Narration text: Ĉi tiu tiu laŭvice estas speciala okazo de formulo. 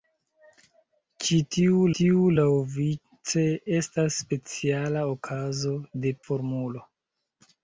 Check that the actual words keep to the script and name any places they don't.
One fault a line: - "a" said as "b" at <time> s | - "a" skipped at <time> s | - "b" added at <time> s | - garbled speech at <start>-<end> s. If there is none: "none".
none